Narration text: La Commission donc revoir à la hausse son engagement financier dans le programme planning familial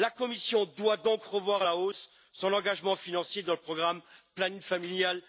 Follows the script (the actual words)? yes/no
no